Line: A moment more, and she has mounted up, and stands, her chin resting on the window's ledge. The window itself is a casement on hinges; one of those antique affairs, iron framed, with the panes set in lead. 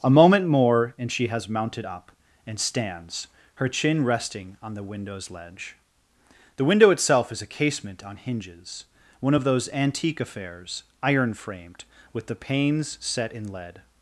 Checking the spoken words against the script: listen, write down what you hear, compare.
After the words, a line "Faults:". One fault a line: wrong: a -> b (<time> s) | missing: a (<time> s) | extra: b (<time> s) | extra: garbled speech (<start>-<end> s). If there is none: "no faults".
A moment more, and she has mounted up, and stands, her chin resting on the window's ledge. The window itself is a casement on hinges; one of those antique affairs, iron framed, with the panes set in lead.
Faults:
no faults